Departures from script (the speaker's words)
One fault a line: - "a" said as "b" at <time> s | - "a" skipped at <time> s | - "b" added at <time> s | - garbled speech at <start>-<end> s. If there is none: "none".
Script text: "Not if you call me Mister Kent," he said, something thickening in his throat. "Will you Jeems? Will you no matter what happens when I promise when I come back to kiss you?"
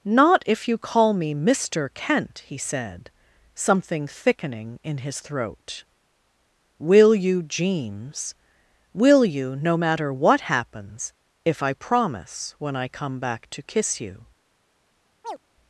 - "when" said as "if" at 11.4 s